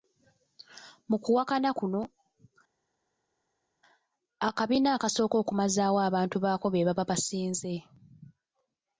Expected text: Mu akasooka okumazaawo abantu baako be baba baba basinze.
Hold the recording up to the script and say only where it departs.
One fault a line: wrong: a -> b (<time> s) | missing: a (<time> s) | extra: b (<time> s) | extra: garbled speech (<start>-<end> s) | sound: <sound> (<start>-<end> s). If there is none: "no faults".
extra: kuwakana kuno akabiina (1.2 s)
missing: baba (7.0 s)